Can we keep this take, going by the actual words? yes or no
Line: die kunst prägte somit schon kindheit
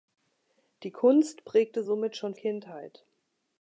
yes